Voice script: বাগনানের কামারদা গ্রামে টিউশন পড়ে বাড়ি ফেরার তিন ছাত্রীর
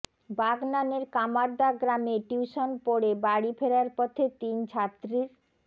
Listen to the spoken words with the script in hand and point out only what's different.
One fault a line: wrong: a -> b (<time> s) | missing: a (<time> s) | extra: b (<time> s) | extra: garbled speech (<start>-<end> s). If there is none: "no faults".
extra: পথে (4.0 s)